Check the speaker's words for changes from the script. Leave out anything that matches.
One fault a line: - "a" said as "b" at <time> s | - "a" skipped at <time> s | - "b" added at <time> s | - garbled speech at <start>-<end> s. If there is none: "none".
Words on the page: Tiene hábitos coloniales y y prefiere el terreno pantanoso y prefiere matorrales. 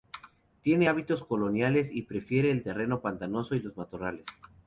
- "y" skipped at 2.0 s
- "prefiere" said as "los" at 3.6 s